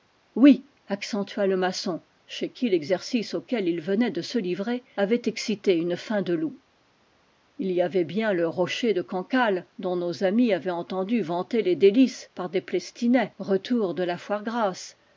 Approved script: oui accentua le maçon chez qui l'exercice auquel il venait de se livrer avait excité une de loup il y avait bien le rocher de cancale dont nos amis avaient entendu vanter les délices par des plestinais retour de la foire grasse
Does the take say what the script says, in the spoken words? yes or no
no